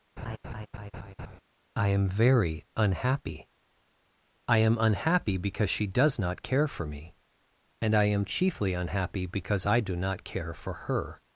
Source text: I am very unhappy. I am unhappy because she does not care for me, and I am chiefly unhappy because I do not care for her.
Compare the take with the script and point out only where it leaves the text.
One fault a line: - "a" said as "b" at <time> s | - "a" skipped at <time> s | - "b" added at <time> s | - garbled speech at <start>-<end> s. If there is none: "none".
none